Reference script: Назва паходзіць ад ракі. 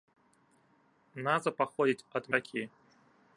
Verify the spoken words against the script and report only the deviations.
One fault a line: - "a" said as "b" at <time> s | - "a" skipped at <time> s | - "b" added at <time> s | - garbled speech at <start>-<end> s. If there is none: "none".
none